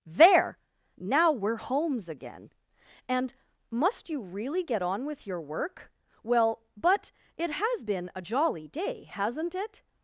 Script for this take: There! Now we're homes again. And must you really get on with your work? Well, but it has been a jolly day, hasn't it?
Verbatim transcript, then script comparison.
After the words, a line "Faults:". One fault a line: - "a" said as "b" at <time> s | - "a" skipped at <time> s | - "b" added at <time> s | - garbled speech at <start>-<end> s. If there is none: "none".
There! Now we're homes again. And must you really get on with your work? Well, but it has been a jolly day, hasn't it?
Faults:
none